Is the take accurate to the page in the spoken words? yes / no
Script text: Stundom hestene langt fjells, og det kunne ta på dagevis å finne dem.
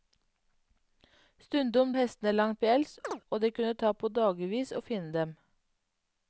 yes